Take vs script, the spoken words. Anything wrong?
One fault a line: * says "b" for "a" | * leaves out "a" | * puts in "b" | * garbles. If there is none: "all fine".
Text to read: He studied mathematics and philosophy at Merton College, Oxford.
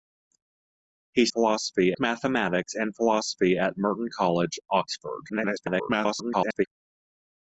* says "philosophy" for "studied"
* garbles